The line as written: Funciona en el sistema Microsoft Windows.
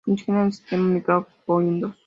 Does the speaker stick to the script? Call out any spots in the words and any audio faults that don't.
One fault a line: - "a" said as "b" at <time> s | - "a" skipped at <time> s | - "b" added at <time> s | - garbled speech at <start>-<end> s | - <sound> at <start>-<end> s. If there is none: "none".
none